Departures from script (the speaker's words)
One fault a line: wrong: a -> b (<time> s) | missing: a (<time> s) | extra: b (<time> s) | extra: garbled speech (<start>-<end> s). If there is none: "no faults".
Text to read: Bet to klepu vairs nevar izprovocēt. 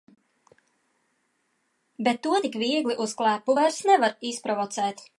extra: tik viegli uz (2.4 s)